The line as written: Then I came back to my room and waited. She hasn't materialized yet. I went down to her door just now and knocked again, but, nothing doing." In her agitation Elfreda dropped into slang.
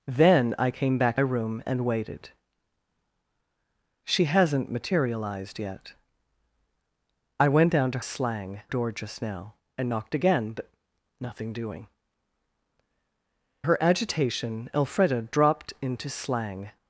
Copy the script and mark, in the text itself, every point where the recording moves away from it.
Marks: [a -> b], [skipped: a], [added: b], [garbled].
Then I came back [skipped: to my] room and waited. She hasn't materialized yet. I went down to [her -> slang] door just now and knocked again, but, nothing doing." [skipped: In] her agitation Elfreda dropped into slang.